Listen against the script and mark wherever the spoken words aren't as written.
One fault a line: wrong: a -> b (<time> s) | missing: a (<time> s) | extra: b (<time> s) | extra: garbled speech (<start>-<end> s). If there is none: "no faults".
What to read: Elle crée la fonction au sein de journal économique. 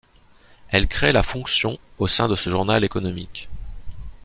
extra: ce (2.4 s)